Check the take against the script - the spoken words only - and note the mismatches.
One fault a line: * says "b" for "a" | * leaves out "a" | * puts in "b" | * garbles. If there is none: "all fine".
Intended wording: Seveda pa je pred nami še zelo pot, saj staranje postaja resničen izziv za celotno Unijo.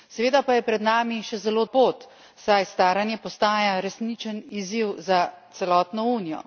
all fine